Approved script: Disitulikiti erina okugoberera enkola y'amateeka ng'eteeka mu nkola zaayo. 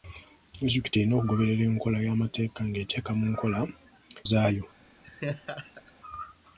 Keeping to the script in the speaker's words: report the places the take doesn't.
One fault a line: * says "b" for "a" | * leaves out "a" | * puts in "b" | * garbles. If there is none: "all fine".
all fine